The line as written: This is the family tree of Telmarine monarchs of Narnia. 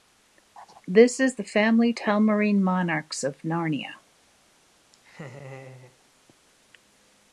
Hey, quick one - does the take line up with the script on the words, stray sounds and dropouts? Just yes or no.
no